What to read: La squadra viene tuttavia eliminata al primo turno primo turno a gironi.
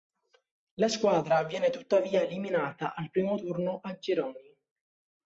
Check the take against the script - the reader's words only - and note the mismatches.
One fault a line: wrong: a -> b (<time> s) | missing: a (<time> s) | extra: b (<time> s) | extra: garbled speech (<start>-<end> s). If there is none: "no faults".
missing: primo turno (3.8 s)